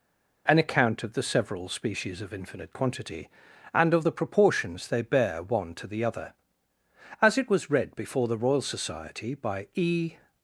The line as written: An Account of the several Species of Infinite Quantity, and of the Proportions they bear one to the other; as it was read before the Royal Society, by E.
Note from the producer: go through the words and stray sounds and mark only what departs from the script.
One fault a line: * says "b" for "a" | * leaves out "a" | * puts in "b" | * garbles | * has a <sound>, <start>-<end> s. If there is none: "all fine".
all fine